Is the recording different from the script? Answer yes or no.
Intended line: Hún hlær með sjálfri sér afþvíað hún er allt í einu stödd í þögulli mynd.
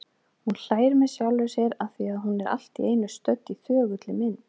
no